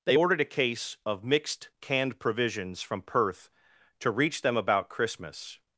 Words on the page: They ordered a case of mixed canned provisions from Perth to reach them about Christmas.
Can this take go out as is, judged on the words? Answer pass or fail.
pass